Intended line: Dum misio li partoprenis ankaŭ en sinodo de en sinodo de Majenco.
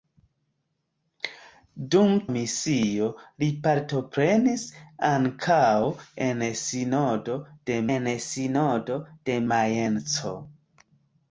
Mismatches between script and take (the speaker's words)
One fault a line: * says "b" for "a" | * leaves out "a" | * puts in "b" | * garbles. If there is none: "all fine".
all fine